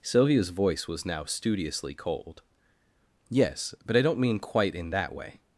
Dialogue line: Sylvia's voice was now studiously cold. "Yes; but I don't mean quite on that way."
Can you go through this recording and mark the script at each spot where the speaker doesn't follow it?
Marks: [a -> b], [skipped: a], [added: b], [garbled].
Sylvia's voice was now studiously cold. "Yes; but I don't mean quite [on -> in] that way."